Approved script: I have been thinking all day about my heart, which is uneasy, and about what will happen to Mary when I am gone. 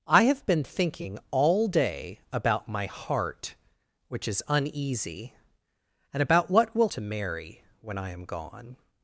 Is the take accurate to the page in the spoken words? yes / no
no